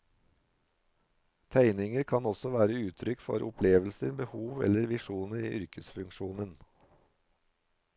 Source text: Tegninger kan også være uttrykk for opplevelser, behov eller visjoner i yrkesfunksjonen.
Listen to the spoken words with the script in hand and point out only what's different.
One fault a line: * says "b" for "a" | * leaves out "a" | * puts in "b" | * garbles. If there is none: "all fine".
all fine